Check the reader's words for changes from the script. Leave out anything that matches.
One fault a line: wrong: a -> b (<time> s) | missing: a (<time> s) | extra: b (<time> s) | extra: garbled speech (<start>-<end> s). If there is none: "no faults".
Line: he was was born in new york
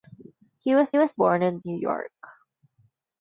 no faults